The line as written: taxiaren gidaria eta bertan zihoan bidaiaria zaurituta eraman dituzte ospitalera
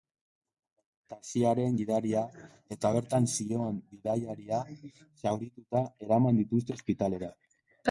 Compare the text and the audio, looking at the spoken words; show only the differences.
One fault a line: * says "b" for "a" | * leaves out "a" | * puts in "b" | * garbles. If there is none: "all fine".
all fine